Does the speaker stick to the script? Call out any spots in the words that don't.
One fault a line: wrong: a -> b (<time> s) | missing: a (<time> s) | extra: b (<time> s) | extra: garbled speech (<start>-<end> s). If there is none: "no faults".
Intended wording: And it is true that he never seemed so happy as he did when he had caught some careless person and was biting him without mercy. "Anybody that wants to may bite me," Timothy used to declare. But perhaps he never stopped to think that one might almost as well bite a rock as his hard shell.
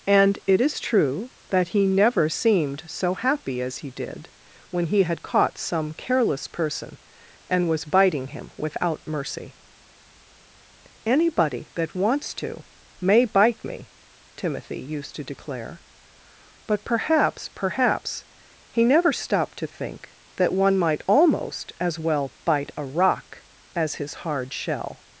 extra: perhaps (17.5 s)